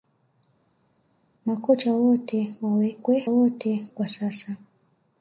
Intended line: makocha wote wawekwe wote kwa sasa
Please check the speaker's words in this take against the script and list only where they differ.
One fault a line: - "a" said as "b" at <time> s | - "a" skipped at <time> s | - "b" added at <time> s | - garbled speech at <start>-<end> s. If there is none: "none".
none